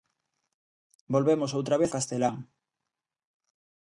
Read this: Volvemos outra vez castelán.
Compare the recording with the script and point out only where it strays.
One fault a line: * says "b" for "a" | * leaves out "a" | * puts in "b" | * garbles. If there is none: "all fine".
all fine